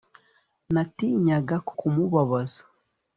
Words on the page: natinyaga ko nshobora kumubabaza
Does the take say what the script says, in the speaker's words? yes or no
no